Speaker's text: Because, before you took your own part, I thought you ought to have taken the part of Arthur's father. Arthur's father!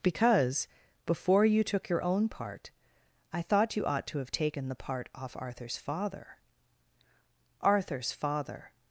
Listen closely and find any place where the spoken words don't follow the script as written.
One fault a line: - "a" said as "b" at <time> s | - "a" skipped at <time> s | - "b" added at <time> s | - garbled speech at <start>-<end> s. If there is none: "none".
- "of" said as "off" at 5.2 s